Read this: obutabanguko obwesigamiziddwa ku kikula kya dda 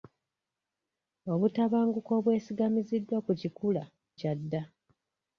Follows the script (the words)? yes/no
yes